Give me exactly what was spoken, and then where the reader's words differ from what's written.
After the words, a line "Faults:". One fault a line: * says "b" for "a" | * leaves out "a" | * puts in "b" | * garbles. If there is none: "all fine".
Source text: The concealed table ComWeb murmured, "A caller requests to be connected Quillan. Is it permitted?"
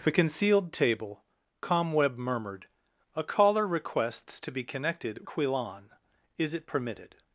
The concealed table ComWeb murmured, "A caller requests to be connected Quillan. Is it permitted?"
Faults:
all fine